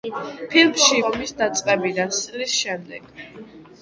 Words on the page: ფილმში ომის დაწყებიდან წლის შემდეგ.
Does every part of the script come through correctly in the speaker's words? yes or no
yes